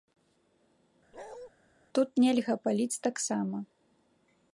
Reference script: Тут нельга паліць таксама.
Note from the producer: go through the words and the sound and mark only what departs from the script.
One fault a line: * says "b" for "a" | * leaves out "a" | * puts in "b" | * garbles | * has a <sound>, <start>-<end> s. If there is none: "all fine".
* has a bark, 1.1-1.5 s